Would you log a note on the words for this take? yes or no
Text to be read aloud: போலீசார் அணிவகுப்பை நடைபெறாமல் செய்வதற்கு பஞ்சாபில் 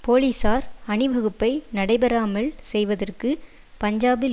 no